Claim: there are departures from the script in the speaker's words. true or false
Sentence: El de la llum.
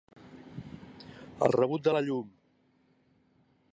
true